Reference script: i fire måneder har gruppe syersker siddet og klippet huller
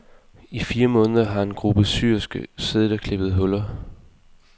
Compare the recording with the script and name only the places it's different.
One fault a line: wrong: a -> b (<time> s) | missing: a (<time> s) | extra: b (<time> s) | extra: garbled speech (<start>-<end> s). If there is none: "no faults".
extra: en (1.4 s)